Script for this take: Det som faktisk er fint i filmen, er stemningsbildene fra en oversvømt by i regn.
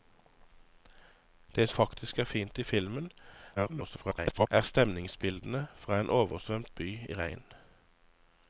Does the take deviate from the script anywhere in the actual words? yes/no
yes